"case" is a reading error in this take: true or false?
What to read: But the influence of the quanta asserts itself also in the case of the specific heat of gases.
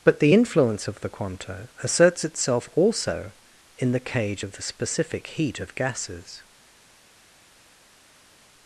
true